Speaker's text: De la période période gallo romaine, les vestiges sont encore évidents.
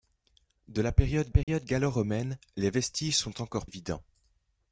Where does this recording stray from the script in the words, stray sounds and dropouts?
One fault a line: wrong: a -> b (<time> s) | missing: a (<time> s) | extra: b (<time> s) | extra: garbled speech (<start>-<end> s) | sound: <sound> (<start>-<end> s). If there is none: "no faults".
sound: dropout (1.4-1.5 s)